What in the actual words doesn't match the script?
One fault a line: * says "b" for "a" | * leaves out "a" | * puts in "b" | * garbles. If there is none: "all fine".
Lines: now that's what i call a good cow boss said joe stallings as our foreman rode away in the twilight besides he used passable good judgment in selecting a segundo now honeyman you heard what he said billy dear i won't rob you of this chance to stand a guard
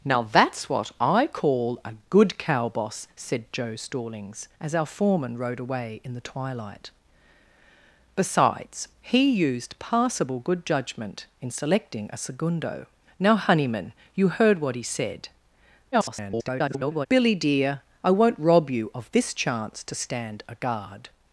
* garbles